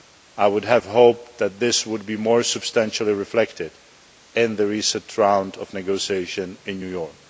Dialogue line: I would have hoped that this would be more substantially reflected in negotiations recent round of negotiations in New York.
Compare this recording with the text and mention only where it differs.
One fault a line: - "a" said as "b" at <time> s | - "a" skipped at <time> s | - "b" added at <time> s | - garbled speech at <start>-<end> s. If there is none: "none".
- "negotiations" said as "the" at 4.5 s